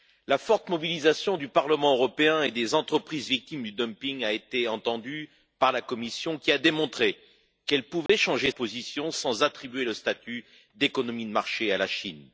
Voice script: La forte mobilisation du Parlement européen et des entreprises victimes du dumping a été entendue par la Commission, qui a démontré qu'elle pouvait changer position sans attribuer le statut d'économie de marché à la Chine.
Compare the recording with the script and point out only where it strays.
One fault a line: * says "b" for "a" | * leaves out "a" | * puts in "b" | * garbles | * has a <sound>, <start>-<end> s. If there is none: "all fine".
* has a dropout, 8.1-8.1 s